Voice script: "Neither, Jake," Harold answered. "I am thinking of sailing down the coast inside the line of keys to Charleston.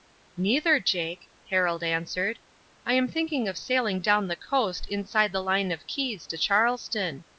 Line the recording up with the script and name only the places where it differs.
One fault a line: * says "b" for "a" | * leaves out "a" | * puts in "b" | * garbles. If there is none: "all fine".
all fine